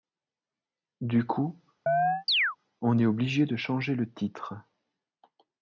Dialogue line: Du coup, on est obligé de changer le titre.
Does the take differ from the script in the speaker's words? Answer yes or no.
no